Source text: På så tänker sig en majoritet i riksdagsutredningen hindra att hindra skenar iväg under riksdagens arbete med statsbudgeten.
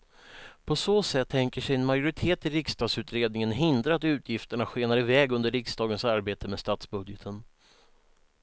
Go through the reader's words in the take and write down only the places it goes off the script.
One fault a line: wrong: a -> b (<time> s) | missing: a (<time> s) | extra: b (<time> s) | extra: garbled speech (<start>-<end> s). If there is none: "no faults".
extra: sätt (1.0 s)
wrong: hindra -> utgifterna (4.0 s)